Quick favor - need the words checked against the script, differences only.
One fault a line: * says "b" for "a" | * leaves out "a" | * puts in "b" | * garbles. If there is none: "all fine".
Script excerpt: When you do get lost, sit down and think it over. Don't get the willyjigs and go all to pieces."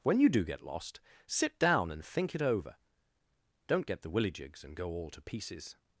all fine